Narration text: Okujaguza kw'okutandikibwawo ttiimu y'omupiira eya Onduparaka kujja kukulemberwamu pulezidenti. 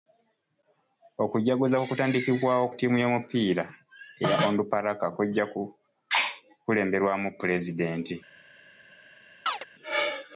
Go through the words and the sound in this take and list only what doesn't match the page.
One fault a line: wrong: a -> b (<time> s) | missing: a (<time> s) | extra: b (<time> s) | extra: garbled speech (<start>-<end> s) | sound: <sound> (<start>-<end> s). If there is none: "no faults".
sound: chirp (9.5-9.6 s)